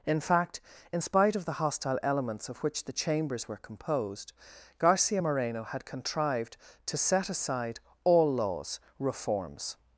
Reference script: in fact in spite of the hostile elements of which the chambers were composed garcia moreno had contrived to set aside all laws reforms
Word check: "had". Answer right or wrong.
right